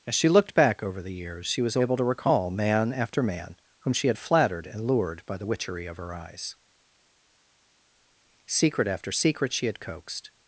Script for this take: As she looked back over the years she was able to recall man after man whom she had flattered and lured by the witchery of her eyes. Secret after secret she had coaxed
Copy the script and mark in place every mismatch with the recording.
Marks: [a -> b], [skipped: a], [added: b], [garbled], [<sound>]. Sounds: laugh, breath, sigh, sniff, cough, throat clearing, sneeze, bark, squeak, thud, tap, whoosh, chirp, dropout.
As she looked back over the years she was able to recall man after man whom she had flattered and lured by the witchery of her eyes. Secret after secret she had coaxed